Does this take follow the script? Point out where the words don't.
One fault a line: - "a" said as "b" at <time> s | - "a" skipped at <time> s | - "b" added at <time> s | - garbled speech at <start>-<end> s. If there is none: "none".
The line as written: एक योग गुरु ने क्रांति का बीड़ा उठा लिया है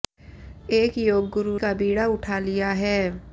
- "ने क्रांति" skipped at 1.6 s